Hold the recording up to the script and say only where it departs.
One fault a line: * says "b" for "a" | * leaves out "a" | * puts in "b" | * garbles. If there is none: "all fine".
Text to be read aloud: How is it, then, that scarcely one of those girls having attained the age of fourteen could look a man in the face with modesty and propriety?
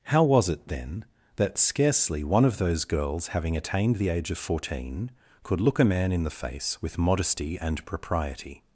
* says "was" for "is"